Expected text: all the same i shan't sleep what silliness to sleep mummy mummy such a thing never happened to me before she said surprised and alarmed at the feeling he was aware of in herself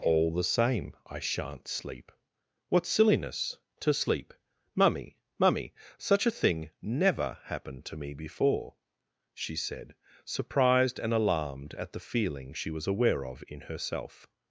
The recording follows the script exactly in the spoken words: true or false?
false